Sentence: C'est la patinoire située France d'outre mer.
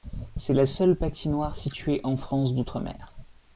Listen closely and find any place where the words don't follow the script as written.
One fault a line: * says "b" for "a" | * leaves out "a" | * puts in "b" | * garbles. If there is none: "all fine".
* puts in "seule"
* puts in "en"